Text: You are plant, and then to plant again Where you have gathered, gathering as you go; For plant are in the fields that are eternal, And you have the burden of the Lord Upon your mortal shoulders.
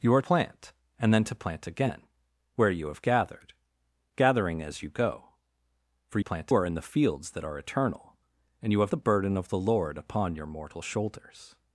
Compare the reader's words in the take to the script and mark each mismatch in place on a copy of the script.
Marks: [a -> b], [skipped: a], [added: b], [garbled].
You are plant, and then to plant again Where you have gathered, gathering as you go; For plant are in the fields that are eternal, And you have the burden of the Lord Upon your mortal shoulders.